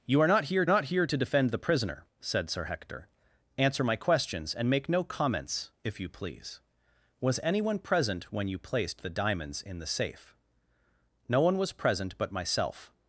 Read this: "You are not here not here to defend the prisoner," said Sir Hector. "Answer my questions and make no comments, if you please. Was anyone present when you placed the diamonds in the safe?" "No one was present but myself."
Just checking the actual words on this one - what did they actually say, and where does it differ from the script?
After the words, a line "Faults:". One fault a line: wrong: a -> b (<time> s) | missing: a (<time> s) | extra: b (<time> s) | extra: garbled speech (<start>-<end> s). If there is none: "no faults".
"You are not here not here to defend the prisoner," said Sir Hector. "Answer my questions and make no comments, if you please. Was anyone present when you placed the diamonds in the safe?" "No one was present but myself."
Faults:
no faults